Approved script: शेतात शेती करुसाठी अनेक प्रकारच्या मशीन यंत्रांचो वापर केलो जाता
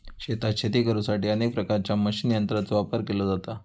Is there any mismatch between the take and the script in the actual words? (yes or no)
no